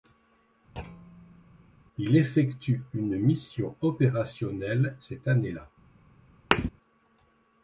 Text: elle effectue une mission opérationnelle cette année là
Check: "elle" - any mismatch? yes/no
yes